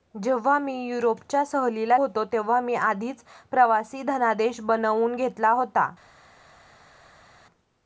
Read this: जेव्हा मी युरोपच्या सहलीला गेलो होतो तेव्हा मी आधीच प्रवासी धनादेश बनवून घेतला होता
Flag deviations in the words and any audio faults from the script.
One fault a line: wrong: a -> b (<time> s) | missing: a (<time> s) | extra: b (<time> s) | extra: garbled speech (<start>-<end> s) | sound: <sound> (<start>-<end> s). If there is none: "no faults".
missing: गेलो (2.0 s)